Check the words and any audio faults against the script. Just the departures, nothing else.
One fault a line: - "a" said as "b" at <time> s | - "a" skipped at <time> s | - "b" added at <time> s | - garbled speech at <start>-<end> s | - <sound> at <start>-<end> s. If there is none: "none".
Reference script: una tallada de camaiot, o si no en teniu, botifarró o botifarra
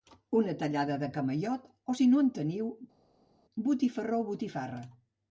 none